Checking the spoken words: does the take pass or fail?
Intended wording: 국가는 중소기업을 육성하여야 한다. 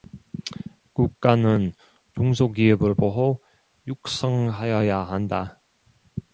fail